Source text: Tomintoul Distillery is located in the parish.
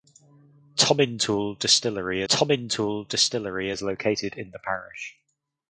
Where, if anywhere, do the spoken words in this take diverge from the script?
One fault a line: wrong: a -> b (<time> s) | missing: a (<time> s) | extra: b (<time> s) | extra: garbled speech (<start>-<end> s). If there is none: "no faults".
extra: tomintoul Distillery (2.3 s)